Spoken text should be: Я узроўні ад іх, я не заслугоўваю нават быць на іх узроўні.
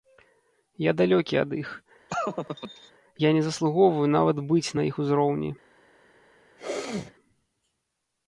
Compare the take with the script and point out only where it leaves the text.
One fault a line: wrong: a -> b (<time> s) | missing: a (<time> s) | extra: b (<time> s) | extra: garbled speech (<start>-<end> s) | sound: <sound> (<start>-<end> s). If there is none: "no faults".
wrong: узроўні -> далёкі (1.0 s)
sound: laugh (2.1-2.9 s)
sound: sneeze (6.6-7.1 s)